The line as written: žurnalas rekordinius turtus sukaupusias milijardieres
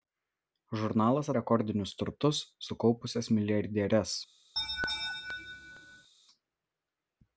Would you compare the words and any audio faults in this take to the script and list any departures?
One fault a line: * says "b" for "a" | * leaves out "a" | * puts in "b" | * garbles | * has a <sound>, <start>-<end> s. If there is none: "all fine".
* has a laugh, 4.6-6.1 s